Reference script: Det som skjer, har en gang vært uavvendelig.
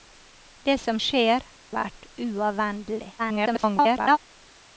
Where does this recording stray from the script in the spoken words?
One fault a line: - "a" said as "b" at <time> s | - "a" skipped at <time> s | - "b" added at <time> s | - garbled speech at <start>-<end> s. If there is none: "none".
- "har en gang" skipped at 1.4 s
- garbled speech at 3.2-4.2 s